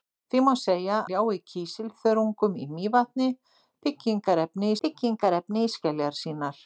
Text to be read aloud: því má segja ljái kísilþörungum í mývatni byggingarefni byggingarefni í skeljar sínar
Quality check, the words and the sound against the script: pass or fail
pass